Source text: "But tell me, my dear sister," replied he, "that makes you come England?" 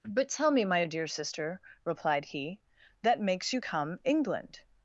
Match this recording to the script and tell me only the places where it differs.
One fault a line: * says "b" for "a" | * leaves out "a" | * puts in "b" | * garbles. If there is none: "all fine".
all fine